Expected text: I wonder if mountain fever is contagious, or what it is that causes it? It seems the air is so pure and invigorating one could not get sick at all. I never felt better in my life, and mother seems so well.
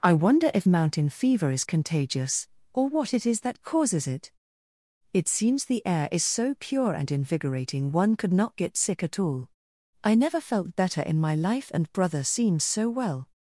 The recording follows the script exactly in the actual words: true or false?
false